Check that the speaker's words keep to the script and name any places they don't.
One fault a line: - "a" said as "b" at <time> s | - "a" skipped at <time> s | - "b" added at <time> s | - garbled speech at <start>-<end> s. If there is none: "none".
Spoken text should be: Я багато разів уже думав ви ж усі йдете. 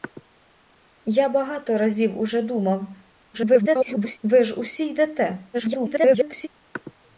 - garbled speech at 3.3-4.2 s
- garbled speech at 5.5-6.5 s